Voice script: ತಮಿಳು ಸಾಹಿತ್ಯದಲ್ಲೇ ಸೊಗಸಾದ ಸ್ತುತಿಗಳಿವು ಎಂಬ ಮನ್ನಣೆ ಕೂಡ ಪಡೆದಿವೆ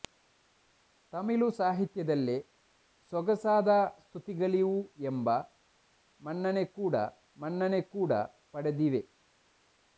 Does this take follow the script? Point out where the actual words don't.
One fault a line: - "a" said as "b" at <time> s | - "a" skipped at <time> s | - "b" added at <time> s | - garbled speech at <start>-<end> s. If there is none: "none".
- "ಮನ್ನಣೆ ಕೂಡ" added at 7.4 s